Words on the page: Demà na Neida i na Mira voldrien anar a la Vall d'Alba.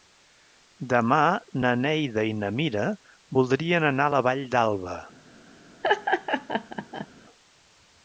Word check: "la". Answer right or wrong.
right